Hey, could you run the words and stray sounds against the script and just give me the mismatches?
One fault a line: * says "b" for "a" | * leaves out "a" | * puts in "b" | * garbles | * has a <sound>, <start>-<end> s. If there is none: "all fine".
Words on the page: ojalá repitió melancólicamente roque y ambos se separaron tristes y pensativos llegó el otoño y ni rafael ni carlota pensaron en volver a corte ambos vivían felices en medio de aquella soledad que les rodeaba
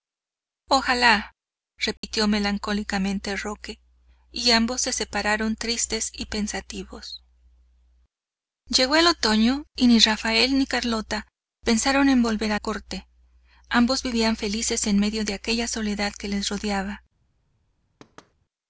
* has a dropout, 2.0-2.0 s
* has a thud, 18.0-18.3 s